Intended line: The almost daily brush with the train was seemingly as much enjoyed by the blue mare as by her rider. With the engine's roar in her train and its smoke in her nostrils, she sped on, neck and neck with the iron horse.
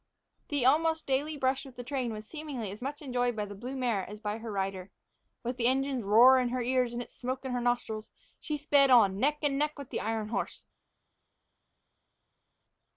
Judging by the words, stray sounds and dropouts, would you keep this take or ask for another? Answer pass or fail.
fail